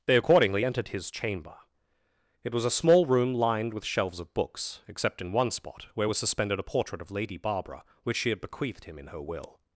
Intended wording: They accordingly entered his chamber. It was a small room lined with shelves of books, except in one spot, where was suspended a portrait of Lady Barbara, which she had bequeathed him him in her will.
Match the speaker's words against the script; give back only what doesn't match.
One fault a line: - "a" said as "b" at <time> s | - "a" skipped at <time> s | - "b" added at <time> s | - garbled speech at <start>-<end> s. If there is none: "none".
- "him" skipped at 9.0 s